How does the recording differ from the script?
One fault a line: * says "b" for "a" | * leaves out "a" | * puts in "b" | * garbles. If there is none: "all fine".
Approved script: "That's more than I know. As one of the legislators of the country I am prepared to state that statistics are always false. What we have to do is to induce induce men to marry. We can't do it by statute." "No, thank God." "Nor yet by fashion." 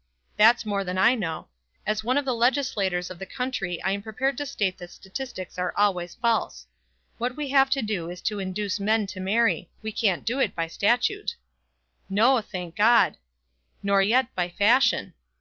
* leaves out "induce"